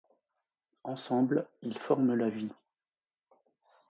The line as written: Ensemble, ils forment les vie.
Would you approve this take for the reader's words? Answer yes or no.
no